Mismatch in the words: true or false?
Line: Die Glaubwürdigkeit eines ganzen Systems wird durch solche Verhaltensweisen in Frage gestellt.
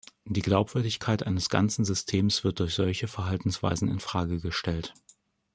false